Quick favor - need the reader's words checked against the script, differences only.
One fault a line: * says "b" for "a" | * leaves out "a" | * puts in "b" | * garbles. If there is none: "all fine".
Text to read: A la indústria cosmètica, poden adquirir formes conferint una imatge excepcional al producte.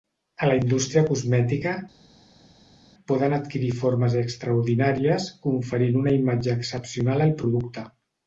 * puts in "extraordinàries"